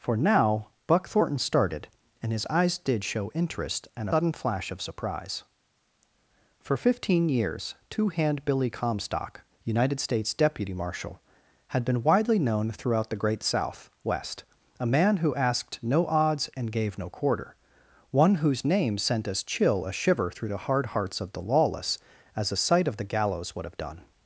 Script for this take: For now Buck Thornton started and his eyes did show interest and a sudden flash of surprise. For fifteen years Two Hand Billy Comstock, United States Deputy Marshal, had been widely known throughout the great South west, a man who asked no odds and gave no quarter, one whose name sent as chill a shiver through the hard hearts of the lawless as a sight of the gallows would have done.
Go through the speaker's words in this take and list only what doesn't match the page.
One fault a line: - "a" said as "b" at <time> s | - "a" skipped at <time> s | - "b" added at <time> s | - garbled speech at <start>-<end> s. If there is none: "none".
- "a" skipped at 4.1 s